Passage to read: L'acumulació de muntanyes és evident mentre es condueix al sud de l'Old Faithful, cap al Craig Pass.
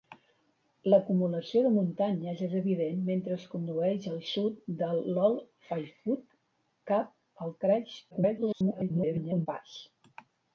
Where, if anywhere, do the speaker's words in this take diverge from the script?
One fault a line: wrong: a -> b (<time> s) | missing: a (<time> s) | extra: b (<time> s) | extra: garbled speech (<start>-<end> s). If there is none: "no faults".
extra: garbled speech (8.1-9.5 s)